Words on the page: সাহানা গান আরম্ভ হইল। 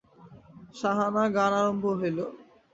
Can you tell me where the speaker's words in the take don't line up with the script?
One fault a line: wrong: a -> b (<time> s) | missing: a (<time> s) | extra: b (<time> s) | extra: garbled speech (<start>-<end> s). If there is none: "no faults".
no faults